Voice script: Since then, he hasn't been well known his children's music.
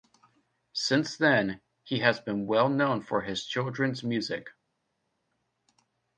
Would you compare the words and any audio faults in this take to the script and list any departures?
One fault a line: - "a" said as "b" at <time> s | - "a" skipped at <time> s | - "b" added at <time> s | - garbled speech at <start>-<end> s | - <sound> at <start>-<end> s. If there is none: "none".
- "hasn't" said as "has" at 2.0 s
- "for" added at 3.0 s